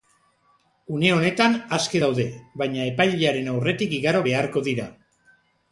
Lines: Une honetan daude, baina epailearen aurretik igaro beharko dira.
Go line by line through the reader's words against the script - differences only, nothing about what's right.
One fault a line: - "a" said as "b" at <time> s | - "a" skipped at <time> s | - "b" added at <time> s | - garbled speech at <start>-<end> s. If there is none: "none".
- "aske" added at 1.8 s